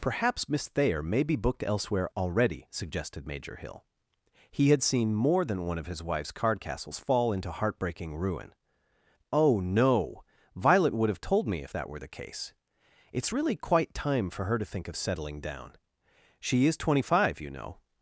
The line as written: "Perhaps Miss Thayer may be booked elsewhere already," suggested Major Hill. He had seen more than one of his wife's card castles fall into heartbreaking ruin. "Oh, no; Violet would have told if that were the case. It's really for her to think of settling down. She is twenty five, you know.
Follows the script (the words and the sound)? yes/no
no